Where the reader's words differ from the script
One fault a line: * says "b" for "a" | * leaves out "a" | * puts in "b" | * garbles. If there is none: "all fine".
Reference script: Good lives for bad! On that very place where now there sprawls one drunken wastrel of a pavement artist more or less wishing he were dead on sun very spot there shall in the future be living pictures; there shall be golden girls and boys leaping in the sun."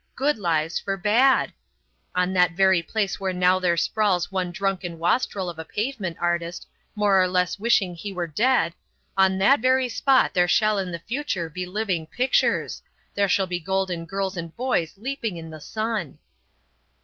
* says "that" for "sun"